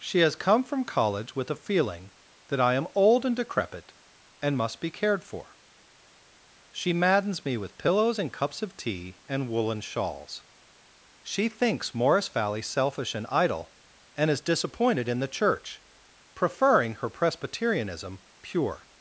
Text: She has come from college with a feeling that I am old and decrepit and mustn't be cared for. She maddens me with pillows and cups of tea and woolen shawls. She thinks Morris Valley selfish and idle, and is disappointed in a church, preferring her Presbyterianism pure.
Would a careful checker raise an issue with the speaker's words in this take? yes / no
yes